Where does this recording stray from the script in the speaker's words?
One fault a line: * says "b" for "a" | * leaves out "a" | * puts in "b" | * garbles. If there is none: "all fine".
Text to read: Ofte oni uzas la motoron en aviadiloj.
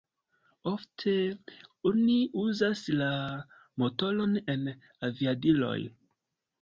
all fine